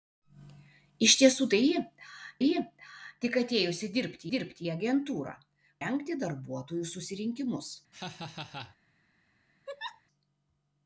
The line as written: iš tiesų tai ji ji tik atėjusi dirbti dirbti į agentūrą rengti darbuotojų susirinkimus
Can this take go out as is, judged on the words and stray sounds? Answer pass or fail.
fail